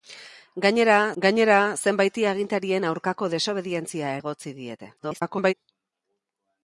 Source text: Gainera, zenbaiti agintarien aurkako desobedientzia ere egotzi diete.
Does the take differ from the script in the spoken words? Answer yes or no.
yes